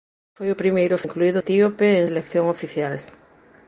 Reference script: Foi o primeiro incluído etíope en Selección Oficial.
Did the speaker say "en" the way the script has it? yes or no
yes